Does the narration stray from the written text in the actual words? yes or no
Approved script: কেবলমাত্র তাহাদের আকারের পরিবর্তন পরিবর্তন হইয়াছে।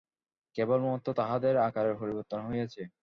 yes